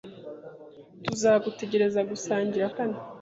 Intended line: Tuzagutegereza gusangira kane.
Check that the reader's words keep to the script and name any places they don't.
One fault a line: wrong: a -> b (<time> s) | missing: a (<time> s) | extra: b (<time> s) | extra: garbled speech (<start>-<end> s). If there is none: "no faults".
no faults